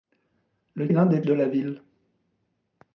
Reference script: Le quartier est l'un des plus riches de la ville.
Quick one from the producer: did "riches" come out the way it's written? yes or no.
no